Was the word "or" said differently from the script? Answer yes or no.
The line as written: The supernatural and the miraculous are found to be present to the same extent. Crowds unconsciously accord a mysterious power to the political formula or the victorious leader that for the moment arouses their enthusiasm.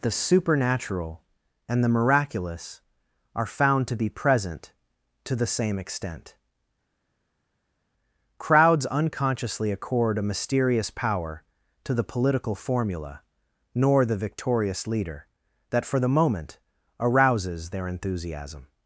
yes